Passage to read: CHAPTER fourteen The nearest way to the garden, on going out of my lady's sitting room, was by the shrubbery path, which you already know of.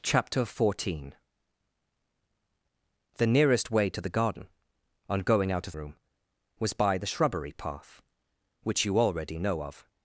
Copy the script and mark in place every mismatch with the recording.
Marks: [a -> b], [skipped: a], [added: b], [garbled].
CHAPTER fourteen The nearest way to the garden, on going out of [skipped: my lady's sitting] room, was by the shrubbery path, which you already know of.